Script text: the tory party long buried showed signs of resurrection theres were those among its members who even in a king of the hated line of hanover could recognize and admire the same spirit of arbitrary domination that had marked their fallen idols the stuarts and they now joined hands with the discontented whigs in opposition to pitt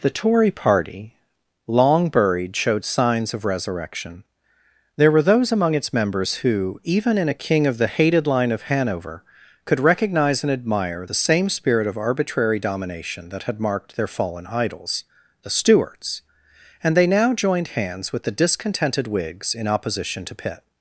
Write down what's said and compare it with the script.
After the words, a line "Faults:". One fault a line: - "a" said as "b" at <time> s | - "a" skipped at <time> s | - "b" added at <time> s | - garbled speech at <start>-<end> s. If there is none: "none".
the tory party long buried showed signs of resurrection there were those among its members who even in a king of the hated line of hanover could recognize and admire the same spirit of arbitrary domination that had marked their fallen idols the stuarts and they now joined hands with the discontented whigs in opposition to pitt
Faults:
- "theres" said as "there" at 5.0 s